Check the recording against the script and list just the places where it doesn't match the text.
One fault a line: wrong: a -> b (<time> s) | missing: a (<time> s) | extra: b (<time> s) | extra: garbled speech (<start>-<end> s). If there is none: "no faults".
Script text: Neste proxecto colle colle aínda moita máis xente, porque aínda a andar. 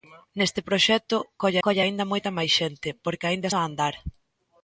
no faults